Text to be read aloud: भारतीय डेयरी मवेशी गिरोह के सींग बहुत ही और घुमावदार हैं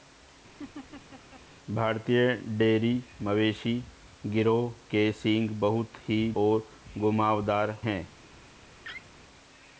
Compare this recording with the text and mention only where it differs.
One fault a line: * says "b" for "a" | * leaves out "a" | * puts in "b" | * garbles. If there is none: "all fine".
all fine